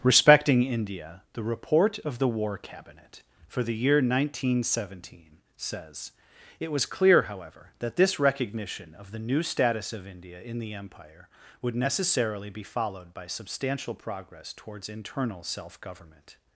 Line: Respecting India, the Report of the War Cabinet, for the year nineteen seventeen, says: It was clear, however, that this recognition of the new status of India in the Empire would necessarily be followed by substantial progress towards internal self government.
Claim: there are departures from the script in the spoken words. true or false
false